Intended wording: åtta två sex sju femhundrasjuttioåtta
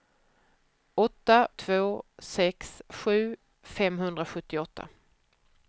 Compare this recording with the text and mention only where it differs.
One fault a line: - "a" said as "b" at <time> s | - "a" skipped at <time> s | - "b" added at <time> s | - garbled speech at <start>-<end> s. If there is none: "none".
none